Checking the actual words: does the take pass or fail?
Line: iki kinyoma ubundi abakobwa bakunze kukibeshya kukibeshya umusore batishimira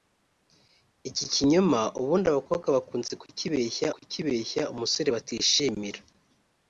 pass